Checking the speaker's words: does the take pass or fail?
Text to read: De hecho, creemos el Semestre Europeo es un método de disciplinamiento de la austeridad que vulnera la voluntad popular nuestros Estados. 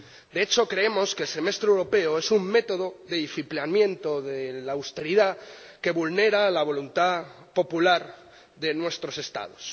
fail